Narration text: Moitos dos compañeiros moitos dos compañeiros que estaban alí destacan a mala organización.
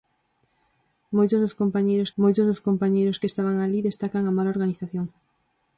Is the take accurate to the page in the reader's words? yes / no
yes